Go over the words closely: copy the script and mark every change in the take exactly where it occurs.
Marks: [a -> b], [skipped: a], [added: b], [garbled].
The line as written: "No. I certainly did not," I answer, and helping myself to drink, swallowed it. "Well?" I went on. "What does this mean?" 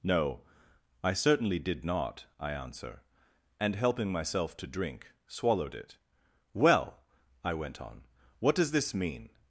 "No. I certainly did not," I answer, and helping myself to drink, swallowed it. "Well?" I went on. "What does this mean?"